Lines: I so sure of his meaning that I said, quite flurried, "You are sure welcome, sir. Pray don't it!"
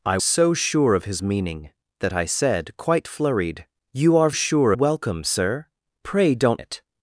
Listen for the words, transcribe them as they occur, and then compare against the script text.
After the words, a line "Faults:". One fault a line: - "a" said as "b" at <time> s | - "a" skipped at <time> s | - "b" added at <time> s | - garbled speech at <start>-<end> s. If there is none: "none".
I so sure of his meaning that I said, quite flurried, "You are sure welcome, sir. Pray don't it!"
Faults:
none